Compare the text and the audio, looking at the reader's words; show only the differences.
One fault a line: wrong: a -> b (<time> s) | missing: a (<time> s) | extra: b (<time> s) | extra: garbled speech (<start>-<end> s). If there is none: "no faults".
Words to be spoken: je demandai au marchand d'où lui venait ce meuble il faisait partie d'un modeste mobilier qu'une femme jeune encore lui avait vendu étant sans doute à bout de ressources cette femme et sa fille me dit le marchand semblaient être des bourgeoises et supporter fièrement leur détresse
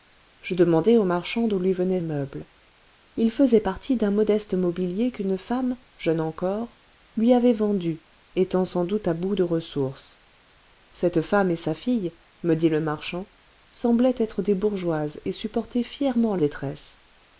missing: ce (2.0 s)
missing: leur (16.4 s)